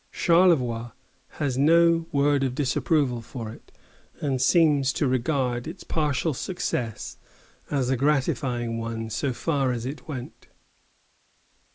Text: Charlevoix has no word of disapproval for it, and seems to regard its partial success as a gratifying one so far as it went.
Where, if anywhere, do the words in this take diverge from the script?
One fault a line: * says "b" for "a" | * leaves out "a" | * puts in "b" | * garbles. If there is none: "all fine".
all fine